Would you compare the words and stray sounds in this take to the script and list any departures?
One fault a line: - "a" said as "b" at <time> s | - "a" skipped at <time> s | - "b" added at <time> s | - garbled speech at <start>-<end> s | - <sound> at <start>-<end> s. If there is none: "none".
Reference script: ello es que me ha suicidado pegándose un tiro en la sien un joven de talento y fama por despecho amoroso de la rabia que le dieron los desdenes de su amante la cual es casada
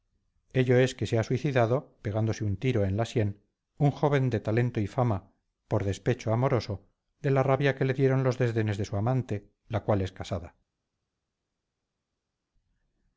- "me" said as "se" at 1.1 s